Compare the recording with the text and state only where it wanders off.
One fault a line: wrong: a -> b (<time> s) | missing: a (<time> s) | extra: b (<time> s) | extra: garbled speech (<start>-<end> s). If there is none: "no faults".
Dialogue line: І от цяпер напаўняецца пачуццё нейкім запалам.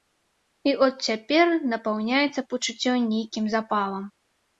no faults